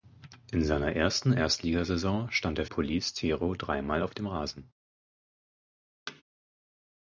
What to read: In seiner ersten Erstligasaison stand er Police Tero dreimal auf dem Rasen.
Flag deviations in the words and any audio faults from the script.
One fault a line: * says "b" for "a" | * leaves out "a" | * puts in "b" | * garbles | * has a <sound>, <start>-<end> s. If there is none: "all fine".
* has a thud, 6.1-6.2 s